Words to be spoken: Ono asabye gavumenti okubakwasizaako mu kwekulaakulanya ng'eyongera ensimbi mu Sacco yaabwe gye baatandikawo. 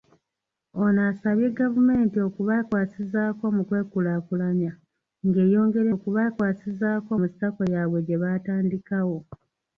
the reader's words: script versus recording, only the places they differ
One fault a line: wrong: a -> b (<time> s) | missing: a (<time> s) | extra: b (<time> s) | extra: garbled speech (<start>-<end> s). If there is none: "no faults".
wrong: ensimbi -> okubakwasizaako (5.9 s)